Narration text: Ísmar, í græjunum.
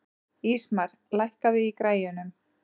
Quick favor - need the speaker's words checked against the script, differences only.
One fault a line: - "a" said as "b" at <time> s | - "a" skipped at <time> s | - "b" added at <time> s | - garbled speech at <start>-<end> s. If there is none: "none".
- "lækkaðu" added at 1.2 s